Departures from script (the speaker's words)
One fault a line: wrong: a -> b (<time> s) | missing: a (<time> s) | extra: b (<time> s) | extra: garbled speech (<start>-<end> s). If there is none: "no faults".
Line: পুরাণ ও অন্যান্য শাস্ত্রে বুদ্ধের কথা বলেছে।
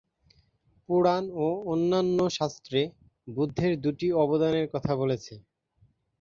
extra: দুটি অবদানের (3.8 s)